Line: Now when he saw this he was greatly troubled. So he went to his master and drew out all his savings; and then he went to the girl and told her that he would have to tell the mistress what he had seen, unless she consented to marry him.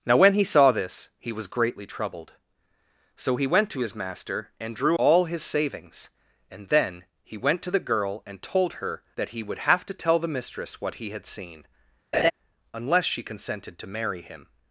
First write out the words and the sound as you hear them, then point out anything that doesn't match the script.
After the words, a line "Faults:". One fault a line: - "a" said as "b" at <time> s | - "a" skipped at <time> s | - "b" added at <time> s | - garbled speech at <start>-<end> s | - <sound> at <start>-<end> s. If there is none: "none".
Now when he saw this he was greatly troubled. So he went to his master and drew all his savings; and then he went to the girl and told her that he would have to tell the mistress what he had seen, unless she consented to marry him.
Faults:
- "out" skipped at 5.0 s
- laugh at 12.1-12.3 s